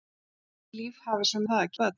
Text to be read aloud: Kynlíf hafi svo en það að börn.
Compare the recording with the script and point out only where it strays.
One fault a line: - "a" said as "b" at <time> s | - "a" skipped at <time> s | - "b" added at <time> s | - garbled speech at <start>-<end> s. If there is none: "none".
none